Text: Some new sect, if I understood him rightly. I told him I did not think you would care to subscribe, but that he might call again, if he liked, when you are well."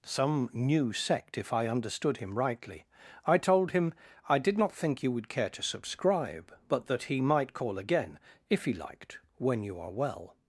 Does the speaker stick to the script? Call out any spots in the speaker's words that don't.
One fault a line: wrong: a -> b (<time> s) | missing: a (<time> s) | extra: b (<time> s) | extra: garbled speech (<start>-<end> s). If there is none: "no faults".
no faults